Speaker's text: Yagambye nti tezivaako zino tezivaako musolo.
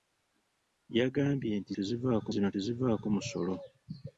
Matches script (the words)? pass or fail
pass